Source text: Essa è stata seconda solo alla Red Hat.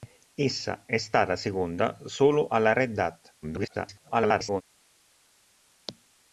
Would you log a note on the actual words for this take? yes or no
yes